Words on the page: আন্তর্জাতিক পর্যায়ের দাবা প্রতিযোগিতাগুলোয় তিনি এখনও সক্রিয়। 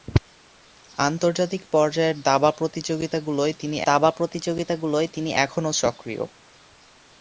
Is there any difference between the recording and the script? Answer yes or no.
yes